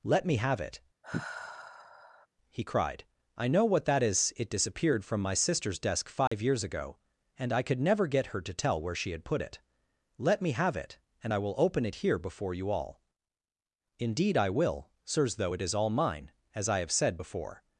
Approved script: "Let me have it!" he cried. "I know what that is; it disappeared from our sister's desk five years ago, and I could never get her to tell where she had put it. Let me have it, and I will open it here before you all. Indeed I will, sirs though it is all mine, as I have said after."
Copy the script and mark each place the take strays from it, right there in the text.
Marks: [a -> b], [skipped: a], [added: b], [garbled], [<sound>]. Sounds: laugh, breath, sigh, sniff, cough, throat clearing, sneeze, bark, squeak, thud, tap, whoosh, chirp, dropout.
"Let me have it!" [sigh] he cried. "I know what that is; it disappeared from [our -> my] sister's desk five [dropout] years ago, and I could never get her to tell where she had put it. Let me have it, and I will open it here before you all. Indeed I will, sirs though it is all mine, as I have said [after." -> before]